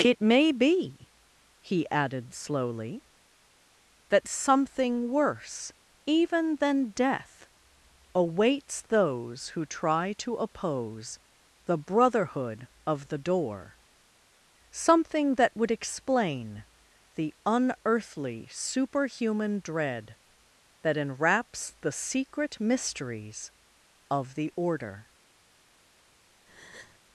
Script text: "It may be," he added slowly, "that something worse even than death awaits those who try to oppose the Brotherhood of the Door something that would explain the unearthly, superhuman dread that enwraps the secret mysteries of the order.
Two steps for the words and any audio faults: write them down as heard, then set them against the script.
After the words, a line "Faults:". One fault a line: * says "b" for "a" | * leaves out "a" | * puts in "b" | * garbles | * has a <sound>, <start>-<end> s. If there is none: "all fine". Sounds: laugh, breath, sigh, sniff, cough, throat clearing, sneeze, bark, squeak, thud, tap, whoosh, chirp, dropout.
"It may be," he added slowly, "that something worse even than death awaits those who try to oppose the Brotherhood of the Door something that would explain the unearthly, superhuman dread that enwraps the secret mysteries of the order.
Faults:
* has a breath, 26.5-27.0 s